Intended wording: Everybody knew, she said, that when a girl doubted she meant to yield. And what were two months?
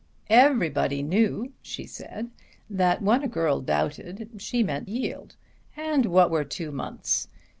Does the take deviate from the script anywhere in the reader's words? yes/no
yes